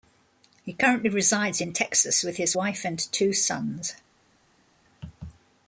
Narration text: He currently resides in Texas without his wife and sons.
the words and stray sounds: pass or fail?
fail